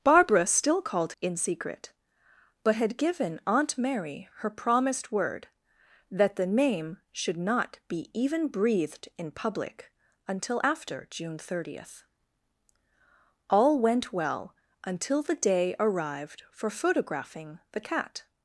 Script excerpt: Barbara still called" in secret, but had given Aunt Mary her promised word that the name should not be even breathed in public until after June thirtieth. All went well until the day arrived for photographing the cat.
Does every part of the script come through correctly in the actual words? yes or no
yes